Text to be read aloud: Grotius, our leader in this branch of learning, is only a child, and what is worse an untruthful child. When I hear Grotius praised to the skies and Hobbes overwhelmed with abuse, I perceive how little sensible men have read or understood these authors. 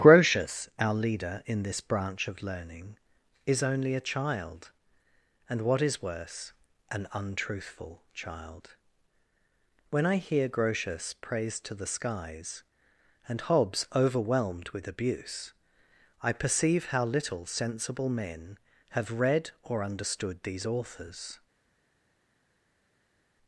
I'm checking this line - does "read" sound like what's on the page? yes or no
yes